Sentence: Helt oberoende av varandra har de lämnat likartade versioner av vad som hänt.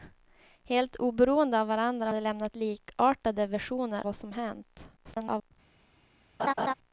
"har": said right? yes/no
no